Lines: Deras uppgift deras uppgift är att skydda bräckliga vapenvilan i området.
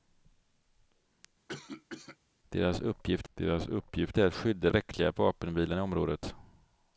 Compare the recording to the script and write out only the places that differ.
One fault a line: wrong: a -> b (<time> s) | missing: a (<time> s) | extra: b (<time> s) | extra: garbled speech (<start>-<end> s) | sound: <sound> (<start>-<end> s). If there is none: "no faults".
sound: cough (1.5-2.2 s)